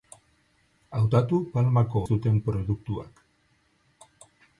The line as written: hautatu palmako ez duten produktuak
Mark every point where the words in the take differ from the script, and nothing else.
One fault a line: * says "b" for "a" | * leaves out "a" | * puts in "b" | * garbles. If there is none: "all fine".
all fine